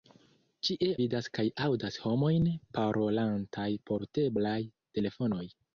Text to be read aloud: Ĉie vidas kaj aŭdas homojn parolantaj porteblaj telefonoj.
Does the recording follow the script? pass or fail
pass